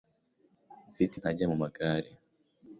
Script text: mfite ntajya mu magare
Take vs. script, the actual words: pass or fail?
pass